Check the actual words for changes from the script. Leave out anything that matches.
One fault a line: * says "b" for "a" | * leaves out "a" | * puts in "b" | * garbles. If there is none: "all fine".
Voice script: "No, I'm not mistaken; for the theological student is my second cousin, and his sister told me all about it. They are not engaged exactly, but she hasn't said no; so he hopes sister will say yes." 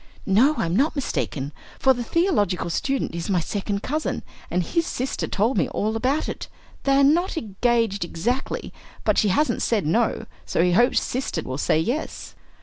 all fine